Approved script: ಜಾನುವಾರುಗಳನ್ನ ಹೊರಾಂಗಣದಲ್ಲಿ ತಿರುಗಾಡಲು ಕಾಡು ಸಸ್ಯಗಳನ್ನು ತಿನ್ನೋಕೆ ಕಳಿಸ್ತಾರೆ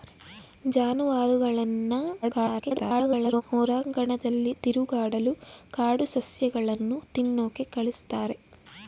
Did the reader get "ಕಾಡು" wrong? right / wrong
right